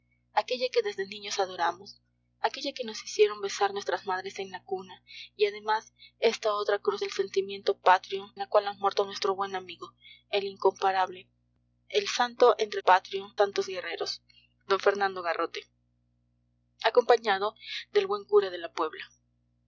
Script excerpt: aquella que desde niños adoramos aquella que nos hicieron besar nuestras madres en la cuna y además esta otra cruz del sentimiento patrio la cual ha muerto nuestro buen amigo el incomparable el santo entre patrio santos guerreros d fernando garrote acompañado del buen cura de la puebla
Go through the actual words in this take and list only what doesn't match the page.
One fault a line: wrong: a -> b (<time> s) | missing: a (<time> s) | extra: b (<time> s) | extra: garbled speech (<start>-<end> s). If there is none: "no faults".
no faults